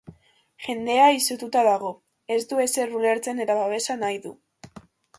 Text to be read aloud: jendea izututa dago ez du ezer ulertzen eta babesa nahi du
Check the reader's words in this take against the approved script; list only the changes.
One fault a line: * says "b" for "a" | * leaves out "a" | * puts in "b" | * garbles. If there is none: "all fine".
all fine